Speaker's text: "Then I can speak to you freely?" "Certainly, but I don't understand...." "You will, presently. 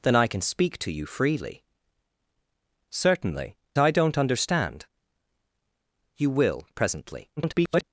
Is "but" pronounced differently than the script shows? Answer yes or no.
yes